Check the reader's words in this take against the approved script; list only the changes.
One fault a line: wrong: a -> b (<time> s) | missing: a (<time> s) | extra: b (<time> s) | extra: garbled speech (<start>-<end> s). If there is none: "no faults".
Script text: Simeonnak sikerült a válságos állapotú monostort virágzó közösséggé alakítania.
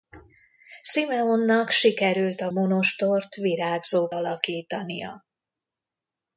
missing: válságos állapotú (2.5 s)
missing: közösséggé (4.1 s)